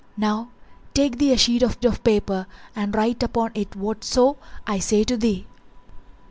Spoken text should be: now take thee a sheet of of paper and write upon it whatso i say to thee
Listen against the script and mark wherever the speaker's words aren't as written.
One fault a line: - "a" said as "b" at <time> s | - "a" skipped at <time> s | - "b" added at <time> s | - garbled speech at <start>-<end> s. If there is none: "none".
none